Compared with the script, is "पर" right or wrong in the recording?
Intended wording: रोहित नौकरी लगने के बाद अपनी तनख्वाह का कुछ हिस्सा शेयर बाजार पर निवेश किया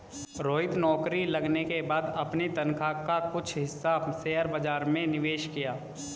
wrong